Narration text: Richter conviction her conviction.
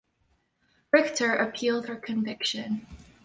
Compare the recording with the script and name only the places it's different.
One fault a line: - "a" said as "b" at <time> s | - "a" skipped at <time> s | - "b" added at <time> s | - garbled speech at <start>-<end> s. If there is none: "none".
- "conviction" said as "appealed" at 1.4 s